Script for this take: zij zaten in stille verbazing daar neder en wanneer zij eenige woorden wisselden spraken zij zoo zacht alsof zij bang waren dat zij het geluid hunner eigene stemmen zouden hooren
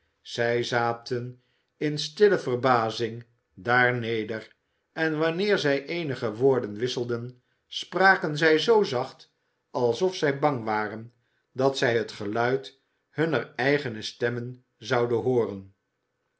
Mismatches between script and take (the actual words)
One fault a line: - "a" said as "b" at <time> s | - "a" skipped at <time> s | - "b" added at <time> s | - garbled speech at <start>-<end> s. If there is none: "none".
none